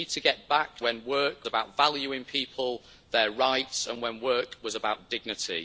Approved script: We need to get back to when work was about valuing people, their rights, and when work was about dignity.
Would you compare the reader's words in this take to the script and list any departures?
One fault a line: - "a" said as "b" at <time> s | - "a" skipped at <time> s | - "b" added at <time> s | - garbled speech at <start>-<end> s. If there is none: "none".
- "to" skipped at 0.8 s
- "was" skipped at 1.5 s